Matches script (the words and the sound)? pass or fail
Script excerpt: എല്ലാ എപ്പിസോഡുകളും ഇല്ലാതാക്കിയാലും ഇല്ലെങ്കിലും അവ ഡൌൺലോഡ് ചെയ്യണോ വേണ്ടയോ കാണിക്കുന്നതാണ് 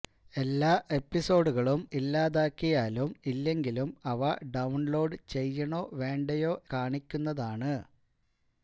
pass